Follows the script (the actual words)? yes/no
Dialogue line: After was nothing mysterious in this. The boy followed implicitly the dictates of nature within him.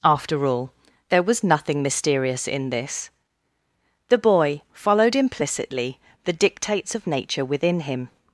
no